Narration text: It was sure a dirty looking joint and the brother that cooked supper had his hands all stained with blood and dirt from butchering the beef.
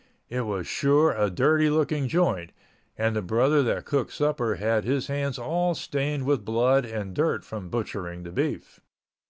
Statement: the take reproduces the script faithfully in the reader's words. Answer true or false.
true